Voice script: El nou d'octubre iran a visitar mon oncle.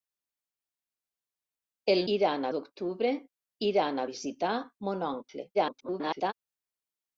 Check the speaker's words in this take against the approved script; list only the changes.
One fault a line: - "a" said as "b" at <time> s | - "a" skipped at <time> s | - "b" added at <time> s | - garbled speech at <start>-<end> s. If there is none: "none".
- "nou" said as "iran" at 2.1 s
- garbled speech at 5.5-6.3 s